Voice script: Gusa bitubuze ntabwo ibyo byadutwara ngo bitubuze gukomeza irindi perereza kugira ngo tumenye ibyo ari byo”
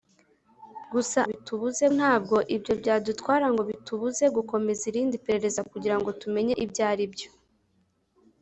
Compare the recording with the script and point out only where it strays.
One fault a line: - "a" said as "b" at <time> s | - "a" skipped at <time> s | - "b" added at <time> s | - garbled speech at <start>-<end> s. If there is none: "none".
none